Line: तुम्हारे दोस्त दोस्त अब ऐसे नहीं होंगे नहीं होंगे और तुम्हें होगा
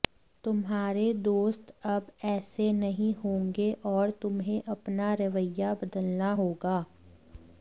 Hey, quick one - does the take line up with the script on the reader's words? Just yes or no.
no